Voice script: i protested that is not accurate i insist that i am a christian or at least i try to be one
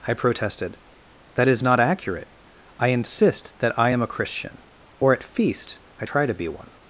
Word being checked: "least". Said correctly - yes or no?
no